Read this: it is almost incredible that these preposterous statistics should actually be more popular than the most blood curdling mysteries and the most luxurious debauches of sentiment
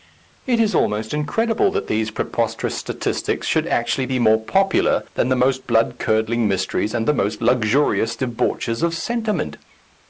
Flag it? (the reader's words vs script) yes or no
no